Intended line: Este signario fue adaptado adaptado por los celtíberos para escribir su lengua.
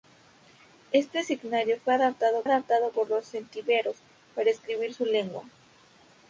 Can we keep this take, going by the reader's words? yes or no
yes